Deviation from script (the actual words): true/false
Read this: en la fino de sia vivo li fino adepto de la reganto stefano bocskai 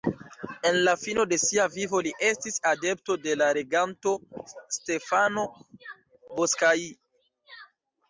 true